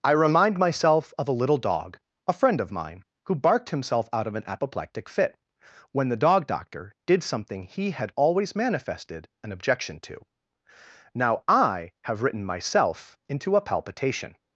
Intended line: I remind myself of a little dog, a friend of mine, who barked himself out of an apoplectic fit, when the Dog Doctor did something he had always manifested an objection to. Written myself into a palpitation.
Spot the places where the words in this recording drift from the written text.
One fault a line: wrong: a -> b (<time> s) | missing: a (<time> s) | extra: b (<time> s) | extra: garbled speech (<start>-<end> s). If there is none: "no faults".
extra: Now I have (11.1 s)